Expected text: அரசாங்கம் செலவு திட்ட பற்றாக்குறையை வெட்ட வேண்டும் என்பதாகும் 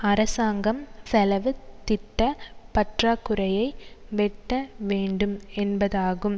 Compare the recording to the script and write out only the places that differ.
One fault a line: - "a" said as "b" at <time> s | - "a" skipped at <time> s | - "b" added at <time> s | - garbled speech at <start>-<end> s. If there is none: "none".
none